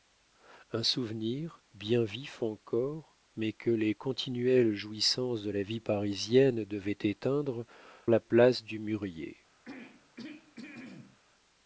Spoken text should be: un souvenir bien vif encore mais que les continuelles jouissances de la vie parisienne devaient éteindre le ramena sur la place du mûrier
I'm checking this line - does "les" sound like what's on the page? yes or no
yes